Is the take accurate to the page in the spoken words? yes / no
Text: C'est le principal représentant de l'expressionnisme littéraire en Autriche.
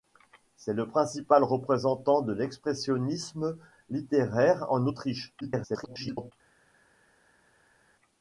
no